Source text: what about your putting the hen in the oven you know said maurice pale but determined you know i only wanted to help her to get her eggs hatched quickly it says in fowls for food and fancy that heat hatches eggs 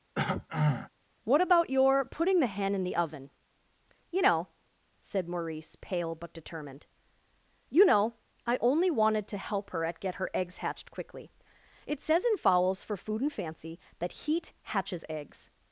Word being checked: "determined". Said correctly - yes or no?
yes